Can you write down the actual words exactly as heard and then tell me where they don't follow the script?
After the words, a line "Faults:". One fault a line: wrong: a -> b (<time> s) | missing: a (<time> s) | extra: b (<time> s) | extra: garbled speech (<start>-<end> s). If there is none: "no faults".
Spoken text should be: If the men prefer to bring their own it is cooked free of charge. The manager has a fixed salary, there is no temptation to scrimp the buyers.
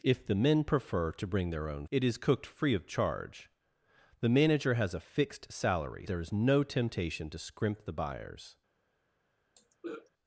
If the men prefer to bring their own it is cooked free of charge. The manager has a fixed salary, there is no temptation to scrimp the buyers.
Faults:
no faults